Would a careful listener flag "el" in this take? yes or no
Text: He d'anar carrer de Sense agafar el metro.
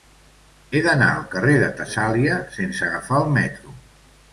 no